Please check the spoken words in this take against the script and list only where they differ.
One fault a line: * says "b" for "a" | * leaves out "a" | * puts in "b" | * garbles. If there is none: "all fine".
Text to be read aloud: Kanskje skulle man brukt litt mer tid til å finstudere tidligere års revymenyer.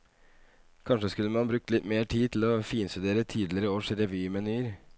all fine